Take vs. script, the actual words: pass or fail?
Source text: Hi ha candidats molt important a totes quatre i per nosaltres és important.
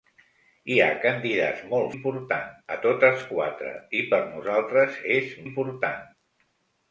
pass